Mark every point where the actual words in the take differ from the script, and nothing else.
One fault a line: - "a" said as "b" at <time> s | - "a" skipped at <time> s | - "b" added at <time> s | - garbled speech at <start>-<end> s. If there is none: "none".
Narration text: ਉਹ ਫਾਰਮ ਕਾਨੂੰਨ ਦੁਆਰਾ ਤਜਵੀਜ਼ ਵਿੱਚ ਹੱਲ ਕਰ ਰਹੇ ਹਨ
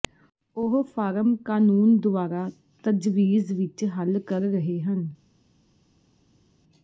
none